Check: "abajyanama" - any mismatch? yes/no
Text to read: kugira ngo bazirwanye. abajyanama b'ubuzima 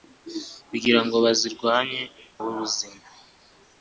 yes